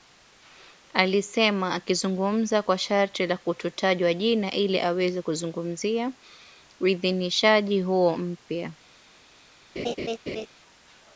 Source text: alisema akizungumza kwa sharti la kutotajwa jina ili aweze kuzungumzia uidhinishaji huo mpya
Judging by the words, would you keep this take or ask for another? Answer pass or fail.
pass